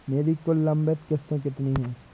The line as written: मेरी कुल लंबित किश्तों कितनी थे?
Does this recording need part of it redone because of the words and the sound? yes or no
yes